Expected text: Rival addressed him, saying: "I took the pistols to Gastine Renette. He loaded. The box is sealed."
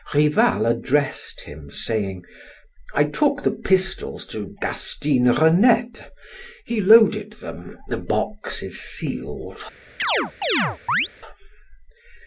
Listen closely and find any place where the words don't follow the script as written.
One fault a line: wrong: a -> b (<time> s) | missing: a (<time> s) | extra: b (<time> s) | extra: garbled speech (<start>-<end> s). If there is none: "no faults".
extra: them (7.3 s)